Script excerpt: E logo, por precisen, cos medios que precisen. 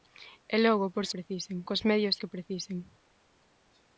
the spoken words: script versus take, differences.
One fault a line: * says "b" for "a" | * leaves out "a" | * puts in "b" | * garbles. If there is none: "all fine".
all fine